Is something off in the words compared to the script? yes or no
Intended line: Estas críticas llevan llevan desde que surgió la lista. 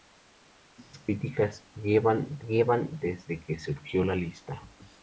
no